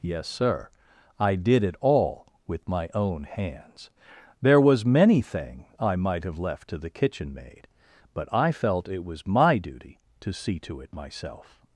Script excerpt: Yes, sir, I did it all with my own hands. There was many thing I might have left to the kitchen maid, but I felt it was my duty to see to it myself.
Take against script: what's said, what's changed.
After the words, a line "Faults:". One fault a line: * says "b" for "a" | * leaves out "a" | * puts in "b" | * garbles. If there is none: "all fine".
Yes, sir, I did it all with my own hands. There was many thing I might have left to the kitchen maid, but I felt it was my duty to see to it myself.
Faults:
all fine